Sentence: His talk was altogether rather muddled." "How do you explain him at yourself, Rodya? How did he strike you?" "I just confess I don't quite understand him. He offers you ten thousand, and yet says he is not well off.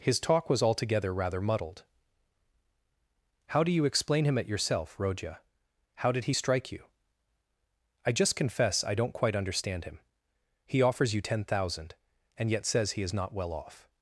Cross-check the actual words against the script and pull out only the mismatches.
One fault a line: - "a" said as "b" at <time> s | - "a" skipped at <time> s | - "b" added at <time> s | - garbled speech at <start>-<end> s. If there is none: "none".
none